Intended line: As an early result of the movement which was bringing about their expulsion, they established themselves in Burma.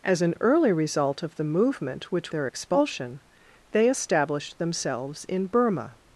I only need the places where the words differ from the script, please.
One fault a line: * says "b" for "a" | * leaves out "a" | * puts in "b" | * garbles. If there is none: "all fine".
* leaves out "was bringing about"